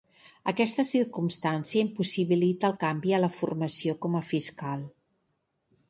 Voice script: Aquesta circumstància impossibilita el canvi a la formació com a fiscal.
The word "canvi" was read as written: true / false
true